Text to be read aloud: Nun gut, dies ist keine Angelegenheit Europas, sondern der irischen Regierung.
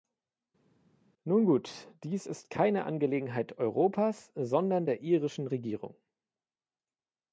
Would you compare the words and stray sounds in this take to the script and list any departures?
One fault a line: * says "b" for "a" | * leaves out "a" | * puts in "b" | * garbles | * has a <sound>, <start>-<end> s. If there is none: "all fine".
all fine